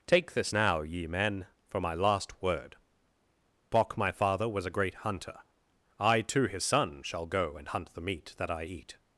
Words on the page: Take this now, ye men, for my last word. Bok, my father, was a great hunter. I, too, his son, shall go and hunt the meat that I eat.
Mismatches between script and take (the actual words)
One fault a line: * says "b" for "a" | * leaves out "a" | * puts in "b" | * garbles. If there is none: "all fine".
all fine